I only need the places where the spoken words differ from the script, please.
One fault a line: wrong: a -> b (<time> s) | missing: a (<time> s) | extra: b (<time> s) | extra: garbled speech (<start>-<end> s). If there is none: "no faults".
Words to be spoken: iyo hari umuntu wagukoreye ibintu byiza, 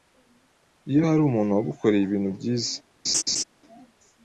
no faults